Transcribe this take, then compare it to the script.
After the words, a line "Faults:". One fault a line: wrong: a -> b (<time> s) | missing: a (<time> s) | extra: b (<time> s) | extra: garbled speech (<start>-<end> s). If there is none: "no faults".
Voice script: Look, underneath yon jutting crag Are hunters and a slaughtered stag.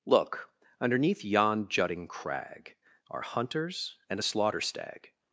Look, underneath yon jutting crag Are hunters and a slaughter stag.
Faults:
wrong: slaughtered -> slaughter (4.2 s)